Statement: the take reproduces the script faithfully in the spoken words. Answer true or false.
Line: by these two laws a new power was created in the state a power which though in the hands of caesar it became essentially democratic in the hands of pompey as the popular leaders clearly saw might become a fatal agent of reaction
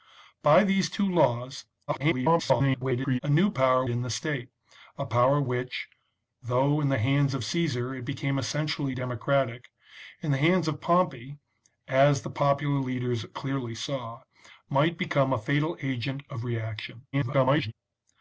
false